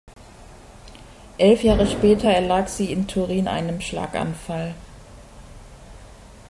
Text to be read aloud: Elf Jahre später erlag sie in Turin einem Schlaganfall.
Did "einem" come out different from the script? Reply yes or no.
no